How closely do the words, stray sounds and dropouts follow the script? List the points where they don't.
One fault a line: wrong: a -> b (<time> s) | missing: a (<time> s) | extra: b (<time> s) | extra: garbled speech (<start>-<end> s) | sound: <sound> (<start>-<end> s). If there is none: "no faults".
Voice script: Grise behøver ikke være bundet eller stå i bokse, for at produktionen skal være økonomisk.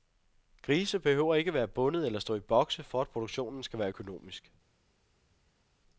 no faults